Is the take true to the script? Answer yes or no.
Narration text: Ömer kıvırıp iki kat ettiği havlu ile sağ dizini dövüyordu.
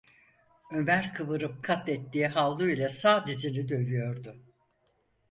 no